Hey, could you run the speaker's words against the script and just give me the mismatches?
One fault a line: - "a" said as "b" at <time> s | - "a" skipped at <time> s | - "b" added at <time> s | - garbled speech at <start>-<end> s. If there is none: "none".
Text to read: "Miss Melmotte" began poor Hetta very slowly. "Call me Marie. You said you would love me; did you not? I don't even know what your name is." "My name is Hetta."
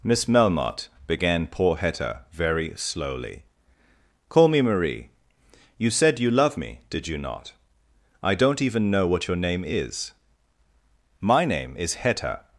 - "would" skipped at 6.3 s